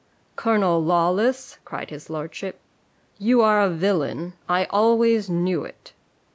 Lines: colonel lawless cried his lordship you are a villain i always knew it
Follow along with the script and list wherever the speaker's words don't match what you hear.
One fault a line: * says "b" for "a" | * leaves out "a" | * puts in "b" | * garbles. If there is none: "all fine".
all fine